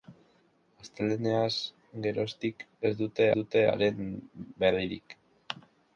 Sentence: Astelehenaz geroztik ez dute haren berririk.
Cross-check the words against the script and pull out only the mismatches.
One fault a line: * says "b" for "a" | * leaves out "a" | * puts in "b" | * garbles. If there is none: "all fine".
* puts in "dute"